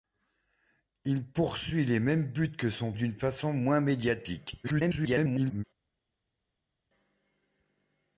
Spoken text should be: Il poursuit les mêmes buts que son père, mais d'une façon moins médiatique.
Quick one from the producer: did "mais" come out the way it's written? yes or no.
no